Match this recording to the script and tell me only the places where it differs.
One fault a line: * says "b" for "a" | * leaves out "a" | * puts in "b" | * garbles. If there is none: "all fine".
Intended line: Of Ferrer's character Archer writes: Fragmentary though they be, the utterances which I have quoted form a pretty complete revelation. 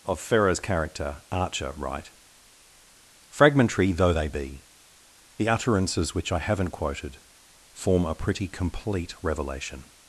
* says "write" for "writes"
* says "haven't" for "have"